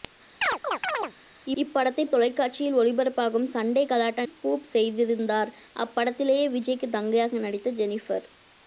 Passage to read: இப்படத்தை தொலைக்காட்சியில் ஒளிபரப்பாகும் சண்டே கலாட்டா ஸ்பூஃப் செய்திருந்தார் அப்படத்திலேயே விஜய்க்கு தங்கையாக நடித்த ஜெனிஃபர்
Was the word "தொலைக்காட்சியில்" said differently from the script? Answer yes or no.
no